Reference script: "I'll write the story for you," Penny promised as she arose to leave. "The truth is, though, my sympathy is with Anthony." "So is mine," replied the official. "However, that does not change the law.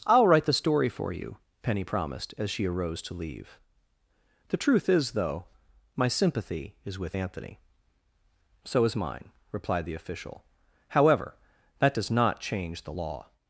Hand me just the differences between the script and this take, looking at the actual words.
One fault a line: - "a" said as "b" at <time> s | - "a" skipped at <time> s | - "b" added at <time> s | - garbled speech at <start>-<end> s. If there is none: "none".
none